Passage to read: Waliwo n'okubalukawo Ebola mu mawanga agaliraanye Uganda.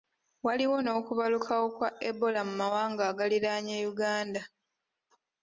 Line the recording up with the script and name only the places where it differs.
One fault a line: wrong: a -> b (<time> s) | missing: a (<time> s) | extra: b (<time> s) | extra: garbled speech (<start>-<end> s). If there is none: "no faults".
extra: kwa (1.8 s)